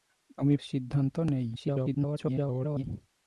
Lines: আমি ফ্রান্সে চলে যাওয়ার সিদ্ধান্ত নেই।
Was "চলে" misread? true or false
true